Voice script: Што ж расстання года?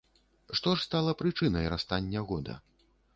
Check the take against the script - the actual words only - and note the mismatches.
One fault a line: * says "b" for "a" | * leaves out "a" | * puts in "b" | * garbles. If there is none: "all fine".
* puts in "стала прычынай"